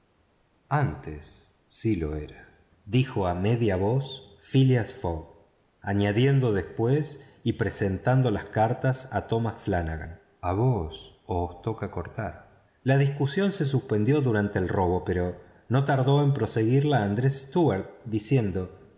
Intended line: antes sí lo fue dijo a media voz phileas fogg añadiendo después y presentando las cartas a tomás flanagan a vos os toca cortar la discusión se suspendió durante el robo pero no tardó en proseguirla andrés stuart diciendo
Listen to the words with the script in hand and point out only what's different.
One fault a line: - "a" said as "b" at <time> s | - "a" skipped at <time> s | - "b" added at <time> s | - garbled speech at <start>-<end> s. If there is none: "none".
- "fue" said as "era" at 2.1 s